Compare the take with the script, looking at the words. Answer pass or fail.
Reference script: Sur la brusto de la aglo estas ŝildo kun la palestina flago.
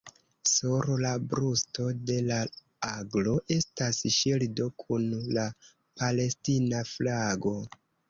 pass